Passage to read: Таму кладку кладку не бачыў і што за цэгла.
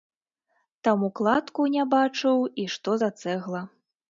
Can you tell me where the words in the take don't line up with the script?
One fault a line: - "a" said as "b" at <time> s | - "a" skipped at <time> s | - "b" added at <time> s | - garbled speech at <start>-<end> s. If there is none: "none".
- "кладку" skipped at 1.7 s